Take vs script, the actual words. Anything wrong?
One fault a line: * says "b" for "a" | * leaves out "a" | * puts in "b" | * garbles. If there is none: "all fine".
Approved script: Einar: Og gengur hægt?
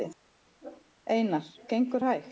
* leaves out "Og"